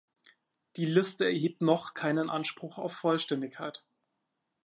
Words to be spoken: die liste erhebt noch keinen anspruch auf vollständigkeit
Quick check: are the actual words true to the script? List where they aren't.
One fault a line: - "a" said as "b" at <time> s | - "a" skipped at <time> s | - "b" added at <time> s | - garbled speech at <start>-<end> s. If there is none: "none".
none